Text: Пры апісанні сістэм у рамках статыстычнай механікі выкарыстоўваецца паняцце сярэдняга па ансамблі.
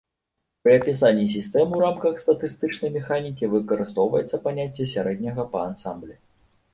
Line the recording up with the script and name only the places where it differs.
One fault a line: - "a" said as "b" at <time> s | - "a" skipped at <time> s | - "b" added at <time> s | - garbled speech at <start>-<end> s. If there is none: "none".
none